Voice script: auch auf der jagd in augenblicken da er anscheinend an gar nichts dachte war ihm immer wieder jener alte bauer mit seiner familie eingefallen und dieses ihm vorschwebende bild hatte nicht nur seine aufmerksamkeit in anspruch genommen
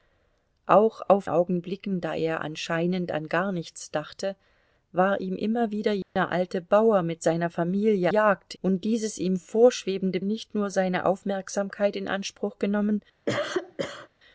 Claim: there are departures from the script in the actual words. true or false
true